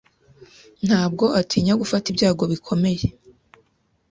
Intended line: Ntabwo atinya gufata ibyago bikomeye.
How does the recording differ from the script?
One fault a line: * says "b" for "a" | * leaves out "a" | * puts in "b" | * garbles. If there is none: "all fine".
all fine